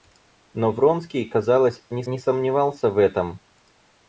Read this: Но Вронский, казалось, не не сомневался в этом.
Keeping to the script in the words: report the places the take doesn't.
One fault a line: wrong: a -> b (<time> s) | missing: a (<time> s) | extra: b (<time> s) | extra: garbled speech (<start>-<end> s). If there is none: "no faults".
no faults